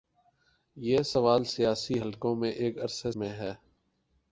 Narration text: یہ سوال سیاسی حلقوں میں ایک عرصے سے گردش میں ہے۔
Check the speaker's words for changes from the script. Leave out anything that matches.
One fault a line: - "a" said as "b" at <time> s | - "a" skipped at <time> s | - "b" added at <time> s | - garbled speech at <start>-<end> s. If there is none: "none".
- "سے گردش" skipped at 3.1 s